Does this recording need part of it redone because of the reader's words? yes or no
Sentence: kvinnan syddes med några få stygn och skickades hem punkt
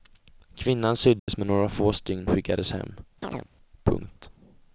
yes